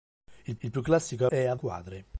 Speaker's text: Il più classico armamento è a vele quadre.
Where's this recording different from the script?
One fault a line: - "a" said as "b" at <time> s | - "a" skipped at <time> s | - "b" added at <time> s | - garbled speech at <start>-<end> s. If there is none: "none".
- "il" added at 0.6 s
- "armamento" skipped at 1.3 s
- "vele" skipped at 1.6 s